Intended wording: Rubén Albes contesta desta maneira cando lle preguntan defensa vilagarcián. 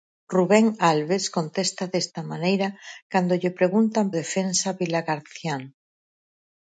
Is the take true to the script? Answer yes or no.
yes